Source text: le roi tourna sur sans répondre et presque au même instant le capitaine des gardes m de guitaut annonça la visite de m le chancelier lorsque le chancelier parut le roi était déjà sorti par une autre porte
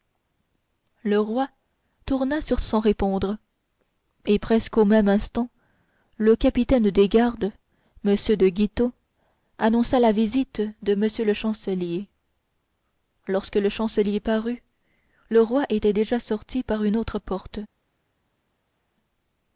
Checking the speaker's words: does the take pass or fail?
pass